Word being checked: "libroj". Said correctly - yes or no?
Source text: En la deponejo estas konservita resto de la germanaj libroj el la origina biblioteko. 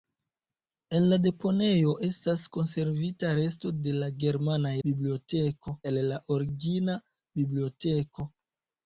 no